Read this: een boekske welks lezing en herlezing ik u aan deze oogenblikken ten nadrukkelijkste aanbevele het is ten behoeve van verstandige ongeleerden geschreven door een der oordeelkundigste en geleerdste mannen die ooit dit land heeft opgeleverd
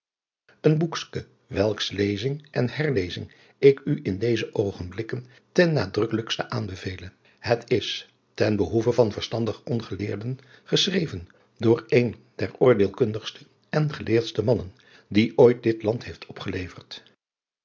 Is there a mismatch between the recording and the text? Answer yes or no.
yes